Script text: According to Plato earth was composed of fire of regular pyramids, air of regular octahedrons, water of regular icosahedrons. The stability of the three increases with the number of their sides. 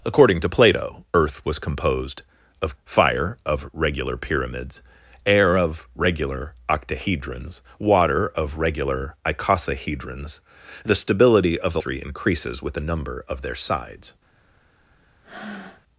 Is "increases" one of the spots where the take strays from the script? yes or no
no